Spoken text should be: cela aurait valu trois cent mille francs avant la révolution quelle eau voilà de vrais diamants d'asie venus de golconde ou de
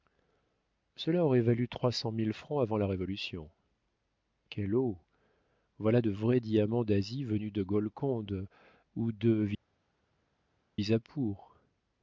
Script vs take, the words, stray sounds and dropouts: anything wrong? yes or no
no